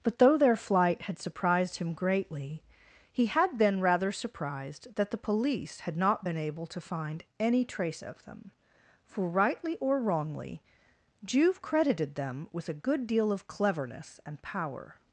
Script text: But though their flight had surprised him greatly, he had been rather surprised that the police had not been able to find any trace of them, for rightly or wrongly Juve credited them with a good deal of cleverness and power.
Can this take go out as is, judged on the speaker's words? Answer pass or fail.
pass